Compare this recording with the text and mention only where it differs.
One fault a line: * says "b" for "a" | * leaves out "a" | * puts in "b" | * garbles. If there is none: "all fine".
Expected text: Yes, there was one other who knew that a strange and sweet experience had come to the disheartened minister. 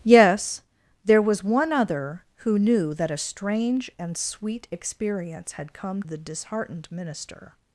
* leaves out "to"